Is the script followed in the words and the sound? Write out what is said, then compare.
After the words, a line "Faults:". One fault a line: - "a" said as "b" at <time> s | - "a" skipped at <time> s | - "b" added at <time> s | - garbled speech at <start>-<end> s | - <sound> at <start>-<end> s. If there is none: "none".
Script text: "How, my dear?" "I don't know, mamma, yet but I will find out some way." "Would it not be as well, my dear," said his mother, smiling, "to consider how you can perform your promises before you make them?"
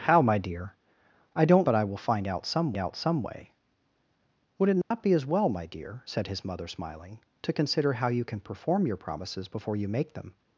"How, my dear?" "I don't but I will find out some out some way." "Would it not be as well, my dear," said his mother, smiling, "to consider how you can perform your promises before you make them?"
Faults:
- "know mamma yet" skipped at 1.7 s
- "out some" added at 2.8 s
- dropout at 4.8-4.9 s